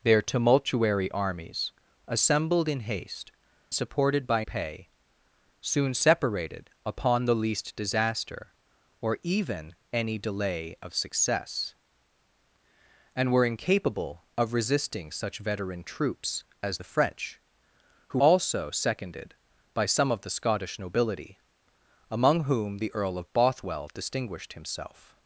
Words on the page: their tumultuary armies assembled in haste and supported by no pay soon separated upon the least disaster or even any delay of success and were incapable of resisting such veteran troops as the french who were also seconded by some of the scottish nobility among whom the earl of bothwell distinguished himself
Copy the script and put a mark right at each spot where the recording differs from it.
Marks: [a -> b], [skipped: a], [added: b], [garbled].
their tumultuary armies assembled in haste [skipped: and] supported by [skipped: no] pay soon separated upon the least disaster or even any delay of success and were incapable of resisting such veteran troops as the french who [skipped: were] also seconded by some of the scottish nobility among whom the earl of bothwell distinguished himself